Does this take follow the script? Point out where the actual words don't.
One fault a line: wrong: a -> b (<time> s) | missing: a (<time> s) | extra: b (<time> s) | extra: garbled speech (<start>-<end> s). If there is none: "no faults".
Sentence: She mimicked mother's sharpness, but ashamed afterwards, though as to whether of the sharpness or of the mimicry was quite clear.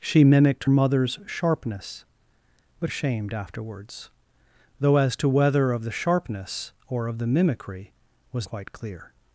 no faults